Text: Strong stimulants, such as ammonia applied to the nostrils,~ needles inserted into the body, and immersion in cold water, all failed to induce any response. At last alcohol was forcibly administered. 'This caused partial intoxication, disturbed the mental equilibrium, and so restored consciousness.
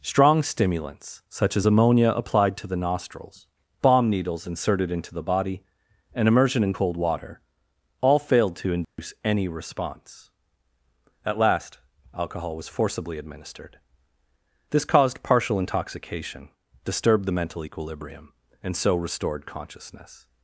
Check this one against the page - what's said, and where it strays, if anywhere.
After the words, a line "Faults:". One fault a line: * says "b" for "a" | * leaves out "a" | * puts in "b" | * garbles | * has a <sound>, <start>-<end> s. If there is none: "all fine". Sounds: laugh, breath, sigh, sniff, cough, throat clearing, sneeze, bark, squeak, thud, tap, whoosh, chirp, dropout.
Strong stimulants, such as ammonia applied to the nostrils,~ bomb needles inserted into the body, and immersion in cold water, all failed to induce any response. At last alcohol was forcibly administered. 'This caused partial intoxication, disturbed the mental equilibrium, and so restored consciousness.
Faults:
* puts in "bomb"
* has a dropout, 8.8-9.0 s